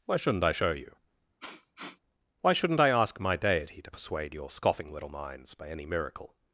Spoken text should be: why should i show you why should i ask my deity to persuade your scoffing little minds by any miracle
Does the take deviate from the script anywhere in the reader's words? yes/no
yes